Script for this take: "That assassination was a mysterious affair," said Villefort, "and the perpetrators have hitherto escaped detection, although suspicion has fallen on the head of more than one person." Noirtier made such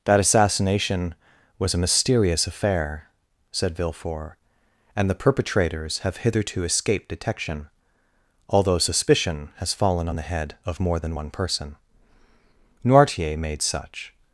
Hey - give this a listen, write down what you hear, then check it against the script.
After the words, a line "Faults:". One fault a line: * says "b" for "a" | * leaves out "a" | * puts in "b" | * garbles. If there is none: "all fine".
"That assassination was a mysterious affair," said Villefort, "and the perpetrators have hitherto escaped detection, although suspicion has fallen on the head of more than one person." Noirtier made such
Faults:
all fine